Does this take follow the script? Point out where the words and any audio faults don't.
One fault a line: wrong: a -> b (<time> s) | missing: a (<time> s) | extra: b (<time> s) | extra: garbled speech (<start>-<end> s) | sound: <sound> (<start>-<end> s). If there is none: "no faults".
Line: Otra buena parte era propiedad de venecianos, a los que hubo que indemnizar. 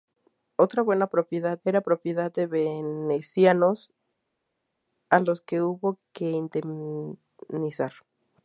wrong: parte -> propiedad (1.1 s)